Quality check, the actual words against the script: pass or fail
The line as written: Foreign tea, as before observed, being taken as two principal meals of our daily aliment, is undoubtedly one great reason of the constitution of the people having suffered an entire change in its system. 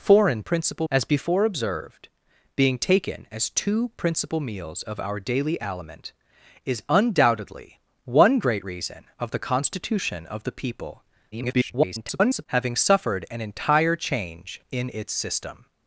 fail